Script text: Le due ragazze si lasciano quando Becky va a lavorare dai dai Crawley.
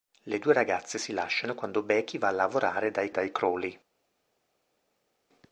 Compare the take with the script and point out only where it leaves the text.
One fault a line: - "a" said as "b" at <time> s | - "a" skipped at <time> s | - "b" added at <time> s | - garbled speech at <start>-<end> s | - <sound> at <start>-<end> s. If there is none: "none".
none